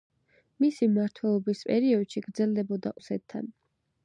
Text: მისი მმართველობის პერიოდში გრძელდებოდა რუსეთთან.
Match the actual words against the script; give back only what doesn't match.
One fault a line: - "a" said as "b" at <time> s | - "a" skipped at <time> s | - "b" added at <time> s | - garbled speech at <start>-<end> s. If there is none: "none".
none